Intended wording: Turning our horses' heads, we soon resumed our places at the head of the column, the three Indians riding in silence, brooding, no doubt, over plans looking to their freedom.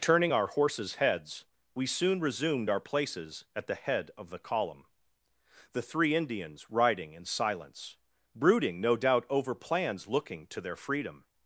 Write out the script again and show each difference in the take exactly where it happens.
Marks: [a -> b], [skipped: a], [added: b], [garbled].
Turning our horses' heads, we soon resumed our places at the head of the column, the three Indians riding in silence, brooding, no doubt, over plans looking to their freedom.